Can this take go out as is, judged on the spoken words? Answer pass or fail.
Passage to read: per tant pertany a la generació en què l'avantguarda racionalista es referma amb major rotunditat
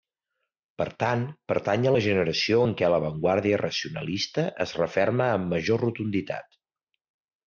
pass